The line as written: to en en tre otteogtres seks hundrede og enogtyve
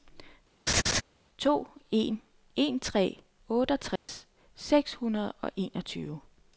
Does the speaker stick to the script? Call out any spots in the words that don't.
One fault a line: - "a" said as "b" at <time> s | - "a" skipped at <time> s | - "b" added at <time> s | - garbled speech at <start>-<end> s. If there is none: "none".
none